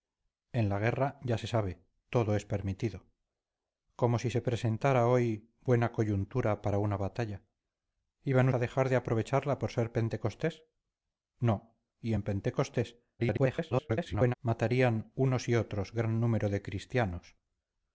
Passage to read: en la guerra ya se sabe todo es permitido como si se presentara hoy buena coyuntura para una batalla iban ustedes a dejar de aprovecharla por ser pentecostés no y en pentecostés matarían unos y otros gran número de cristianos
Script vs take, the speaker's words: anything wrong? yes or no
yes